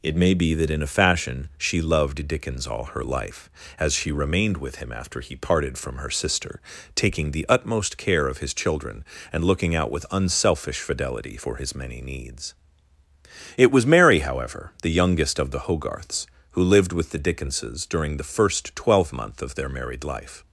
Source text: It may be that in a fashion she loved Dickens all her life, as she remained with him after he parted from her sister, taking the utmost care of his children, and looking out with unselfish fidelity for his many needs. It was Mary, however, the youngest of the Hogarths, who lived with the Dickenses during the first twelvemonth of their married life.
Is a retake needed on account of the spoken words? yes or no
no